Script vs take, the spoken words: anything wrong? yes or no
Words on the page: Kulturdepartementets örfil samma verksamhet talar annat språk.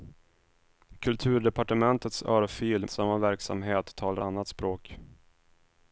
no